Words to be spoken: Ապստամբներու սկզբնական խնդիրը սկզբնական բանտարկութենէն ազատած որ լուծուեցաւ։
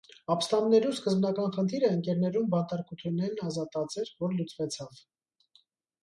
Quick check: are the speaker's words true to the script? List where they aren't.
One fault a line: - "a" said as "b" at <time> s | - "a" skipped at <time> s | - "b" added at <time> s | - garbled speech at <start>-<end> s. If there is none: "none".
- "սկզբնական" said as "ընկերներուն" at 2.0 s
- "էր" added at 4.0 s